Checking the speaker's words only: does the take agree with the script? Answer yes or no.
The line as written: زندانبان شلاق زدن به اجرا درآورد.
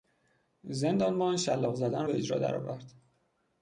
yes